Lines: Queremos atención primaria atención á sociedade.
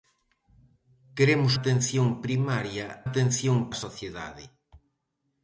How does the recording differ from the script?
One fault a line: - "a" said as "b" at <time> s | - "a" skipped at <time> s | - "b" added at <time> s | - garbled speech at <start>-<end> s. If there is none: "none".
none